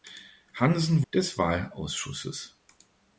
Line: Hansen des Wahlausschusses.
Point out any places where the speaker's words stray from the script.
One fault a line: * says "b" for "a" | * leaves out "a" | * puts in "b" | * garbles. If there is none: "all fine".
all fine